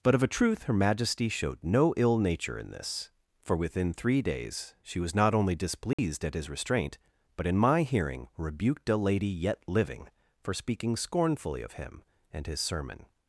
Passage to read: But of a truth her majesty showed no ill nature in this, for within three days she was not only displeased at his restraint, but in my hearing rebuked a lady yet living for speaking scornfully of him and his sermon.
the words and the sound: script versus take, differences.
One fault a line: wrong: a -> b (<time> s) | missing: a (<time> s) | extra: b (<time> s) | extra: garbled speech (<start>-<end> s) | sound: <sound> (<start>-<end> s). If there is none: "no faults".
sound: dropout (5.9-6.0 s)